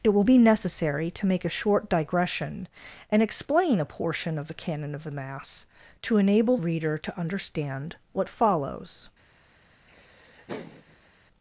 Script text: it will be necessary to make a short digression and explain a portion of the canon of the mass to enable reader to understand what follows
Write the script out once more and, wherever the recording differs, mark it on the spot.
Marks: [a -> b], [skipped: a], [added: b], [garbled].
it will be necessary to make a short digression and explain a portion of the canon of the mass to enable reader to understand what follows